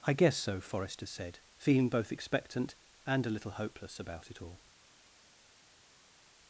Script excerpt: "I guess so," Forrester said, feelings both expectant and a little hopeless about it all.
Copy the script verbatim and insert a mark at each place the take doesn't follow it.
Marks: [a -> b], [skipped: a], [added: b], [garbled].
"I guess so," Forrester said, [feelings -> feeling] both expectant and a little hopeless about it all.